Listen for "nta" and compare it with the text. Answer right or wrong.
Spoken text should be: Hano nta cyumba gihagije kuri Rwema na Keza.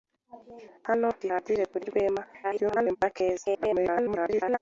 wrong